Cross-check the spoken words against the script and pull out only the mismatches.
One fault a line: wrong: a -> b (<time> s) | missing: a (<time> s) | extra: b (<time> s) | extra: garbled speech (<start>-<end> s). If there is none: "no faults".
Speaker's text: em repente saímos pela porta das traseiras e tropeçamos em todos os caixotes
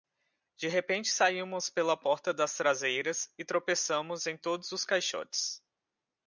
wrong: em -> de (0.6 s)